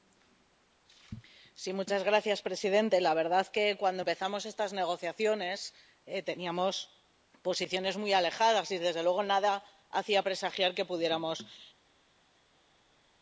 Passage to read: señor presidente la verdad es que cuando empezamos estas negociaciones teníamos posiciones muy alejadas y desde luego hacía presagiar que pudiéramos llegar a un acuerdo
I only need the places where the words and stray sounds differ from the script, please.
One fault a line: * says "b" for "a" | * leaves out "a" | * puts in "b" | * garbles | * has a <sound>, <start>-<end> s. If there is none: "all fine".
* puts in "nada"